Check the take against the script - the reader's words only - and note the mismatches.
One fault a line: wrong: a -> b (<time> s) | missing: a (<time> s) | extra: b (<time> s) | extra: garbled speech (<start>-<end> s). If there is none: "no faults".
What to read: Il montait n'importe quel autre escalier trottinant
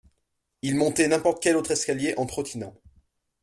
extra: en (2.1 s)